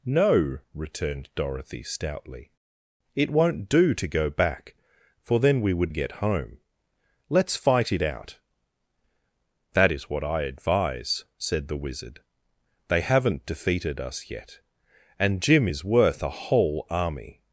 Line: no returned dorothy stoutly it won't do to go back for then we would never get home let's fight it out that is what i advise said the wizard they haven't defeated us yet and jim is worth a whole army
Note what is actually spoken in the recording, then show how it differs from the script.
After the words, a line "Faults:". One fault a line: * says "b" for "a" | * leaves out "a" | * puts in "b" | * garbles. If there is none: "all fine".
no returned dorothy stoutly it won't do to go back for then we would get home let's fight it out that is what i advise said the wizard they haven't defeated us yet and jim is worth a whole army
Faults:
* leaves out "never"